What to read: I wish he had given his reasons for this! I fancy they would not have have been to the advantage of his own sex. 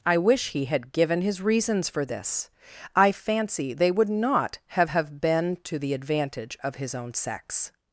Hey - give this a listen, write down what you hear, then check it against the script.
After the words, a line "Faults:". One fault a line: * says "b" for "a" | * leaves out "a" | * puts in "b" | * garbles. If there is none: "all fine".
I wish he had given his reasons for this! I fancy they would not have have been to the advantage of his own sex.
Faults:
all fine